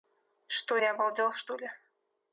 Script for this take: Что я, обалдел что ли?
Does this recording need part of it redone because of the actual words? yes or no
no